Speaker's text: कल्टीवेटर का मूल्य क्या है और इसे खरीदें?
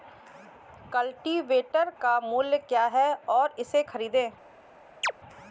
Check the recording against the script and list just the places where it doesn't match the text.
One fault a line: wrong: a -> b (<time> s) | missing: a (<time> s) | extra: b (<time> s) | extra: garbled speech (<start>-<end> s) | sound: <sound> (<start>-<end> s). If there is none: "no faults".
sound: chirp (5.0-5.1 s)